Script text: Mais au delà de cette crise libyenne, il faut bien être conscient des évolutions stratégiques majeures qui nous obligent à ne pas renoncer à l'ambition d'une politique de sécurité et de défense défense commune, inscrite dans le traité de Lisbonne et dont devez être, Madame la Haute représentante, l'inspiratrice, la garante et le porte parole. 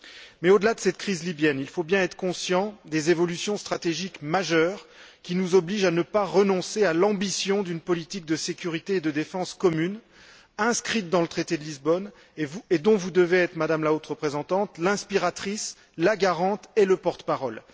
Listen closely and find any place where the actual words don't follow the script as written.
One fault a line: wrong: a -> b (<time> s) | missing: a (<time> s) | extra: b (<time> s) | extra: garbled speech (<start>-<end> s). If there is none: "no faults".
missing: défense (9.5 s)
extra: vous (12.9 s)